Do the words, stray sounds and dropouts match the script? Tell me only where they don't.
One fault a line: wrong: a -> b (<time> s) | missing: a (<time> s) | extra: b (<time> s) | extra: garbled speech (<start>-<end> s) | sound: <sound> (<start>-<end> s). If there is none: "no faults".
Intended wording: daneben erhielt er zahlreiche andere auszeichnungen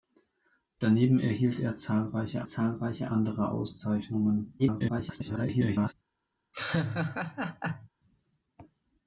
extra: zahlreiche (2.4 s)
extra: garbled speech (4.6-5.9 s)
sound: laugh (6.5-7.9 s)